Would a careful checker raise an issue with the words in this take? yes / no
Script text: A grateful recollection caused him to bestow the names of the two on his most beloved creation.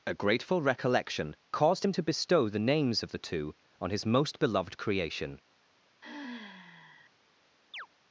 no